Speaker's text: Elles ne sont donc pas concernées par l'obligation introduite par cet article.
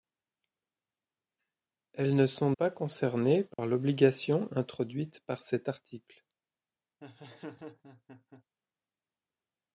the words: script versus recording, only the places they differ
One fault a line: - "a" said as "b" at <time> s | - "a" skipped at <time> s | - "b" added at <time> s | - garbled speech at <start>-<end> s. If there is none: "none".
- "donc" skipped at 2.5 s